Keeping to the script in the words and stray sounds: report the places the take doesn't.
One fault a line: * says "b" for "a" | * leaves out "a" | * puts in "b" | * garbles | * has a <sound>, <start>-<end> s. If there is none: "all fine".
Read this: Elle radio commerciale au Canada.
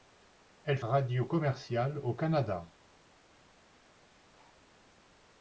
all fine